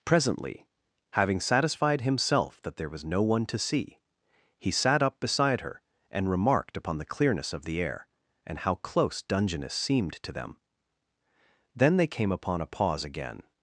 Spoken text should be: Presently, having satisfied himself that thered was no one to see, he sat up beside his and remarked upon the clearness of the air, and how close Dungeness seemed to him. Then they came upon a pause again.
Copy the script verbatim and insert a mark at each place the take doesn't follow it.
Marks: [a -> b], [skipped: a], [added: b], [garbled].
Presently, having satisfied himself that [thered -> there] was no one to see, he sat up beside [his -> her] and remarked upon the clearness of the air, and how close Dungeness seemed to [him. -> them] Then they came upon a pause again.